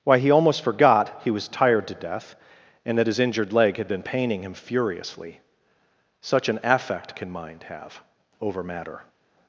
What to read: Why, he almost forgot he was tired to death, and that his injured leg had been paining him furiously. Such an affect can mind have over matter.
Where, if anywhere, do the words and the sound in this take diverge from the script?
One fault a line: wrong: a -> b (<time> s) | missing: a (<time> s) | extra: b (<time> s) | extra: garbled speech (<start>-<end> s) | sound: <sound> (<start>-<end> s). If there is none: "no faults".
no faults